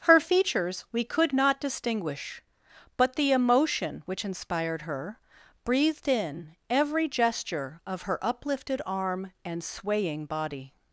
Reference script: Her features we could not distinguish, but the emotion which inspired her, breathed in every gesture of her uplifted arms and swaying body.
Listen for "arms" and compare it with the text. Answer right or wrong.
wrong